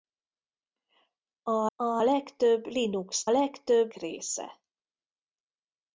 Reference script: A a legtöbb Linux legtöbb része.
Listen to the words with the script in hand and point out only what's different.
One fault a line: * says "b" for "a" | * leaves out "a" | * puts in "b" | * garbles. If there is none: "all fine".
all fine